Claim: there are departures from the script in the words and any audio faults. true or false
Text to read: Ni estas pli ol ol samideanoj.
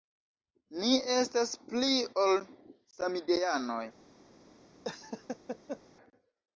true